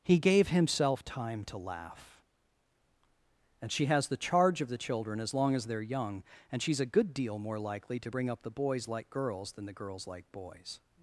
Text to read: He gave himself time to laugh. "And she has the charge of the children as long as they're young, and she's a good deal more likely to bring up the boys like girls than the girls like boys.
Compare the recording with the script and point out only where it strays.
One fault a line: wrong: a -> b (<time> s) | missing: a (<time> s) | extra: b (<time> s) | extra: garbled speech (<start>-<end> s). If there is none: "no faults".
no faults